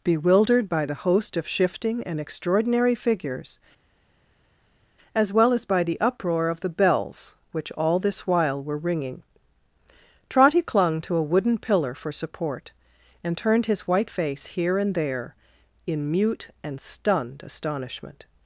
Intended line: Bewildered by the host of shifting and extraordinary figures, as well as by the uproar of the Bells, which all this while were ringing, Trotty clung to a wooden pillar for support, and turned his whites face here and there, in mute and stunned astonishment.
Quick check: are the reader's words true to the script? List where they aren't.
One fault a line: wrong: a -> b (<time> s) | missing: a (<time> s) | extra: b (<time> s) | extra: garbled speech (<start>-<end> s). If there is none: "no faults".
wrong: whites -> white (13.9 s)